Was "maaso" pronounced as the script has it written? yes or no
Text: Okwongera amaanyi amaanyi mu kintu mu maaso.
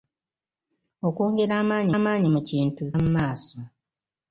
yes